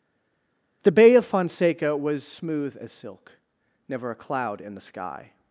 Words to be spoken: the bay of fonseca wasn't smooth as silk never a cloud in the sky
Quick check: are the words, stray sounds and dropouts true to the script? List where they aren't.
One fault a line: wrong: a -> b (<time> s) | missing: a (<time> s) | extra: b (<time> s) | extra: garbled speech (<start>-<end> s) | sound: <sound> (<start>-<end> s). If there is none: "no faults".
wrong: wasn't -> was (1.9 s)